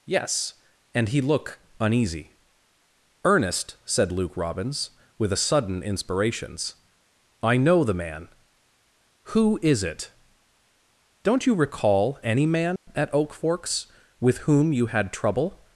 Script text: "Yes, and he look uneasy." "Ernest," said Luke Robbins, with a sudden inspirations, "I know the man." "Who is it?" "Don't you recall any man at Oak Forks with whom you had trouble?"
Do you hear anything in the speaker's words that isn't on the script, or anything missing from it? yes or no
no